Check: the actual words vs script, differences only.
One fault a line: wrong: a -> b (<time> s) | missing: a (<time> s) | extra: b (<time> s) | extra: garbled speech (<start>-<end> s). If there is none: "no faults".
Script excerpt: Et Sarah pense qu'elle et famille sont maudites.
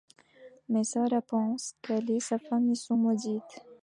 wrong: Et -> Mais (0.7 s)
extra: sa (2.2 s)